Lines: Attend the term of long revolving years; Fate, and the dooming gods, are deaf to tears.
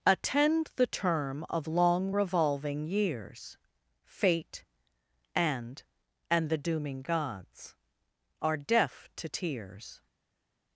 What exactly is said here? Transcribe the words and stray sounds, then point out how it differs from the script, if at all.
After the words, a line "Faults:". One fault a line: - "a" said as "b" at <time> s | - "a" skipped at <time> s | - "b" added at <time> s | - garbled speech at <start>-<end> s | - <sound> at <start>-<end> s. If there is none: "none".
Attend the term of long revolving years; Fate, and and the dooming gods, are deaf to tears.
Faults:
- "and" added at 6.3 s